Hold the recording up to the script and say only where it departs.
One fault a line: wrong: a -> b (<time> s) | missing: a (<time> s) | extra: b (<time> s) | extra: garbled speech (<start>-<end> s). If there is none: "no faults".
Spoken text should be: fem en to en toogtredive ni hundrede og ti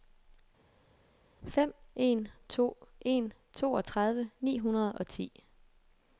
no faults